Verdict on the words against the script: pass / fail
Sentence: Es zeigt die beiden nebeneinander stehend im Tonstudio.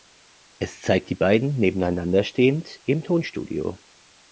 pass